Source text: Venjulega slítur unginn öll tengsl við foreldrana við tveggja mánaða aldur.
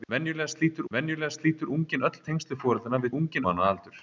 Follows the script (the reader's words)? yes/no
no